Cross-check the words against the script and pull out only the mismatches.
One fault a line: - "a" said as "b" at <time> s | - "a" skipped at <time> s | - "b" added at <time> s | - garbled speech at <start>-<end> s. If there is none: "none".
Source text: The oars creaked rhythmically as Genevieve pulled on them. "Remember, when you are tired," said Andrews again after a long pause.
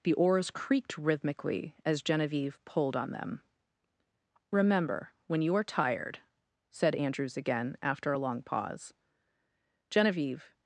- "Genevieve" added at 9.9 s